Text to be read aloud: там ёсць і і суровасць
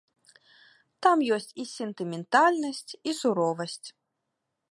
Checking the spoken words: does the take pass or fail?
fail